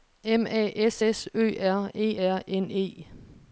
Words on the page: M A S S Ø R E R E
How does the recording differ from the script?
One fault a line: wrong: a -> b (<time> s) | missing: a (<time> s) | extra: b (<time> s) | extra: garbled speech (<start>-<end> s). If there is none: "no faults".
extra: N (2.5 s)